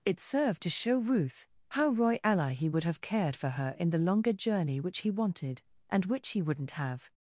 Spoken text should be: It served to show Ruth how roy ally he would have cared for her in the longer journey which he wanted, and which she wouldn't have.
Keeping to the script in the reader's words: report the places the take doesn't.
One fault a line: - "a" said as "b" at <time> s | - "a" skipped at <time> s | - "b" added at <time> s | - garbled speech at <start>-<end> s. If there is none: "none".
- "she" said as "he" at 6.3 s